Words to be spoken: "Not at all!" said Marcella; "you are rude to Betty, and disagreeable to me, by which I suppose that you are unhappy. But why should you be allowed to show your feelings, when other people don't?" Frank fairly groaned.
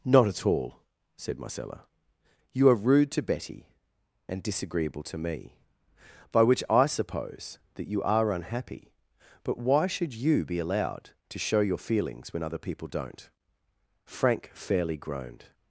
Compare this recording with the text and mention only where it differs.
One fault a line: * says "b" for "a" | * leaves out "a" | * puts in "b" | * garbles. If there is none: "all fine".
all fine